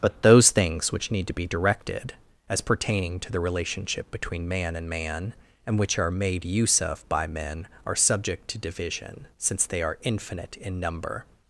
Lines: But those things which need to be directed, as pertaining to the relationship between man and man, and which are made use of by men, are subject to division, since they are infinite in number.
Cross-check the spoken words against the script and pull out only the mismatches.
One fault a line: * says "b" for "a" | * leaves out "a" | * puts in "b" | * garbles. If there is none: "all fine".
all fine